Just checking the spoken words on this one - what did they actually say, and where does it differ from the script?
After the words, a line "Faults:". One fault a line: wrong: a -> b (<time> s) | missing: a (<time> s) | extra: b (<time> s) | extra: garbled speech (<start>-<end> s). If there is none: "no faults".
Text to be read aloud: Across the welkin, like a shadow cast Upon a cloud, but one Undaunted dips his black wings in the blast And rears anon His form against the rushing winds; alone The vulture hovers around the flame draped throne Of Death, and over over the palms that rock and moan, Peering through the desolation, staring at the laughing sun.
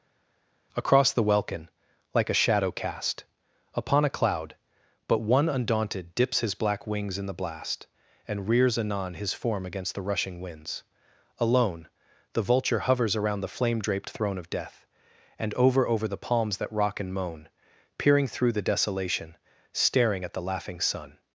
Across the welkin, like a shadow cast Upon a cloud, but one Undaunted dips his black wings in the blast And rears anon His form against the rushing winds; alone The vulture hovers around the flame draped throne Of Death, and over over the palms that rock and moan, Peering through the desolation, staring at the laughing sun.
Faults:
no faults